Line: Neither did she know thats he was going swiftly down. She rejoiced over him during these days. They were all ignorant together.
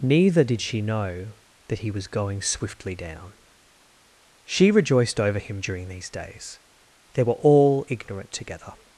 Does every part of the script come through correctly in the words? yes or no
no